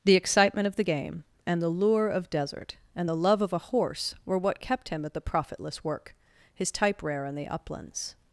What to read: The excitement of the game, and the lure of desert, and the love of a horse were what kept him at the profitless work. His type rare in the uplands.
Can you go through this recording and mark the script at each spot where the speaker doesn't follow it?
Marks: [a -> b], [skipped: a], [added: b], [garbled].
The excitement of the game, and the lure of desert, and the love of a horse were what kept him at the profitless work. His type rare in the uplands.